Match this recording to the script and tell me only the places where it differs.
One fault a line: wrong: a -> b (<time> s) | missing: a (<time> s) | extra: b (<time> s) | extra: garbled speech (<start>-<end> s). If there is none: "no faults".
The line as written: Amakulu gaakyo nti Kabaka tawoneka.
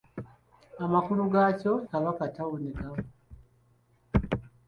missing: nti (1.7 s)